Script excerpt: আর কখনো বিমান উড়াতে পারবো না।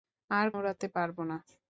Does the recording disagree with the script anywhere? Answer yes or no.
yes